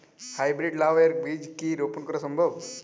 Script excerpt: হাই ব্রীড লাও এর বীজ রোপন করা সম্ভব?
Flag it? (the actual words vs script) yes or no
yes